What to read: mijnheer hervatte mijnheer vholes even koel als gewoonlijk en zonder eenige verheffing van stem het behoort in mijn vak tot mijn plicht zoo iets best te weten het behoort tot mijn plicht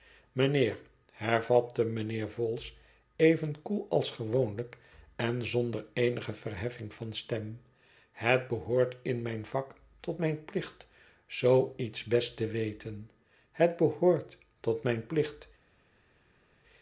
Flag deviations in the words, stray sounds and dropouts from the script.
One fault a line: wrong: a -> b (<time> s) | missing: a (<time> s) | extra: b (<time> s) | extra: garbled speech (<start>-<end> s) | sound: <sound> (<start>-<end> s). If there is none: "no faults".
no faults